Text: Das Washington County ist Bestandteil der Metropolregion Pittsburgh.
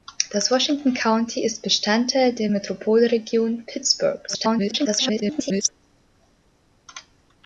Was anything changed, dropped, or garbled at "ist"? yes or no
no